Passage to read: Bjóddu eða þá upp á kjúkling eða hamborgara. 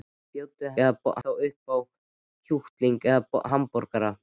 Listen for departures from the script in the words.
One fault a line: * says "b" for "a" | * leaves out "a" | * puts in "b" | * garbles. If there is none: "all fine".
all fine